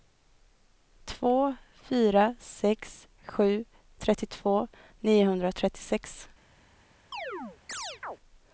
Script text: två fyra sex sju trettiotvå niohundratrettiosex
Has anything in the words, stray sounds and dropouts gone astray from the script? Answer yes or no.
yes